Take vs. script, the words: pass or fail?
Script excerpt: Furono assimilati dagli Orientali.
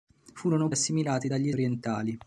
pass